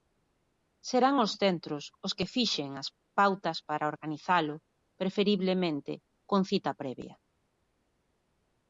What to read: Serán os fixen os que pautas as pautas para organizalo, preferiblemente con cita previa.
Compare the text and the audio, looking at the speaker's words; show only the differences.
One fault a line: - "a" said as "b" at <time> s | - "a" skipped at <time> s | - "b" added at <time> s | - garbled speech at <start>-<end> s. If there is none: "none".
- "fixen" said as "centros" at 1.4 s
- "pautas" said as "fixen" at 2.3 s